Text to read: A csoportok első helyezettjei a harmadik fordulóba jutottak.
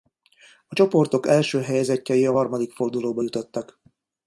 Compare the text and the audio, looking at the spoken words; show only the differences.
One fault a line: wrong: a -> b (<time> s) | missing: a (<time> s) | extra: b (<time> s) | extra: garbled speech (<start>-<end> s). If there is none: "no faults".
no faults